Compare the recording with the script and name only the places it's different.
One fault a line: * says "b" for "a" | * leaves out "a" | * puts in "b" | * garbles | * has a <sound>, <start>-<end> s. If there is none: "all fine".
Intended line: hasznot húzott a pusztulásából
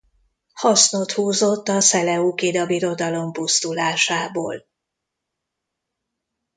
* puts in "szeleukida birodalom"